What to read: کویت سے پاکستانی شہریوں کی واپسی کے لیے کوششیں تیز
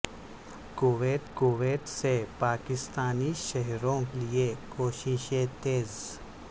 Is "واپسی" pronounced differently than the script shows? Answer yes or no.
yes